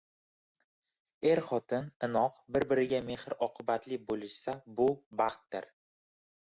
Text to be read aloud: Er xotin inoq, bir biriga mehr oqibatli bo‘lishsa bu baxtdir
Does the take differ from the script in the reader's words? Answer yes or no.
no